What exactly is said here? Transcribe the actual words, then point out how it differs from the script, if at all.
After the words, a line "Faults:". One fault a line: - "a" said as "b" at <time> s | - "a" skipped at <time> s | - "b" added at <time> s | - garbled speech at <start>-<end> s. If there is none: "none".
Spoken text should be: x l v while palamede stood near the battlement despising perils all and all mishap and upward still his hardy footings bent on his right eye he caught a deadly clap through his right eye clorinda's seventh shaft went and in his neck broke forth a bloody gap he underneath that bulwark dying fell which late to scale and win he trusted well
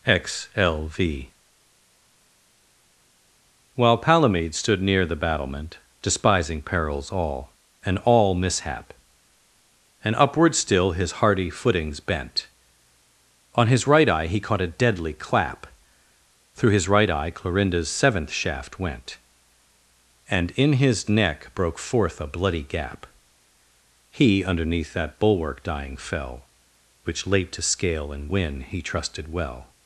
x l v while palamede stood near the battlement despising perils all and all mishap and upward still his hardy footings bent on his right eye he caught a deadly clap through his right eye clorinda's seventh shaft went and in his neck broke forth a bloody gap he underneath that bulwark dying fell which late to scale and win he trusted well
Faults:
none